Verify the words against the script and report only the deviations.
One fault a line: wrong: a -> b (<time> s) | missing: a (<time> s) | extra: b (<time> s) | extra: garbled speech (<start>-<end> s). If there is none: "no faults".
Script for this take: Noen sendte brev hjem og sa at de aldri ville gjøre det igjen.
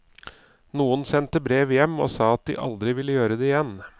no faults